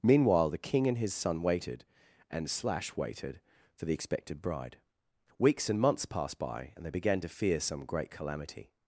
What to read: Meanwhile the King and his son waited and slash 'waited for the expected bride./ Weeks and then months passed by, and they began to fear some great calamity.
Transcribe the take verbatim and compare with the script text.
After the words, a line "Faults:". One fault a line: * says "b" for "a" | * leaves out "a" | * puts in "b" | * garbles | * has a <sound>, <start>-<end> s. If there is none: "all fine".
Meanwhile the King and his son waited and slash 'waited for the expected bride./ Weeks and months passed by, and they began to fear some great calamity.
Faults:
* leaves out "then"